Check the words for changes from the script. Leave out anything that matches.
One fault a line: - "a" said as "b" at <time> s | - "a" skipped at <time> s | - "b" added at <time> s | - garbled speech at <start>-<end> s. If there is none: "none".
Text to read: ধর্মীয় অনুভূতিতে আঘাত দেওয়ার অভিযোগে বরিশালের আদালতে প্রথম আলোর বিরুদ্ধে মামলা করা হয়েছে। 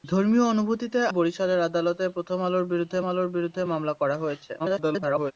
- "আঘাত দেওয়ার অভিযোগে" skipped at 1.0 s
- "আলোর বিরুদ্ধে" added at 3.1 s
- garbled speech at 4.6-5.3 s